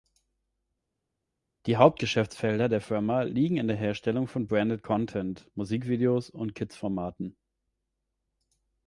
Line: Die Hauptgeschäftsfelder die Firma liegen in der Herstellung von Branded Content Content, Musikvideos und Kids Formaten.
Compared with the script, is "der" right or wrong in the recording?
right